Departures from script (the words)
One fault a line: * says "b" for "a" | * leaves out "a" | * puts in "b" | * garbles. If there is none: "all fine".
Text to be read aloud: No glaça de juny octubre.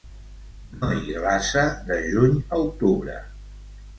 * puts in "hi"
* puts in "a"